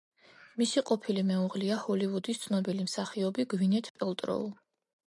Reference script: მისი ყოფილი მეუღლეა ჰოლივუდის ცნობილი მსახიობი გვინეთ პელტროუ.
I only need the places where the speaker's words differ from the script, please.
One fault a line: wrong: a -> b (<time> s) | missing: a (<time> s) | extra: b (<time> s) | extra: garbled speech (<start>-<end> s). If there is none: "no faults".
no faults